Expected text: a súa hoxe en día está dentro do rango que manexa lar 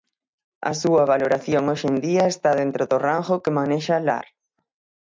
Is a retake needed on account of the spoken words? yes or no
yes